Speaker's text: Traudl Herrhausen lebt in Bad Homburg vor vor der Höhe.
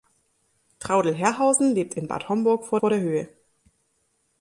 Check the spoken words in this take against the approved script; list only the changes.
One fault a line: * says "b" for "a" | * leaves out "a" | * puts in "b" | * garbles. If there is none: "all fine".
all fine